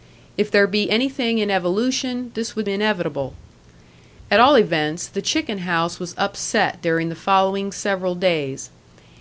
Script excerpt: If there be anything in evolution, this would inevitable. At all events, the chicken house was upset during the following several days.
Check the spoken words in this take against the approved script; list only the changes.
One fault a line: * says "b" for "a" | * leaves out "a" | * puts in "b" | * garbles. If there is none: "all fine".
all fine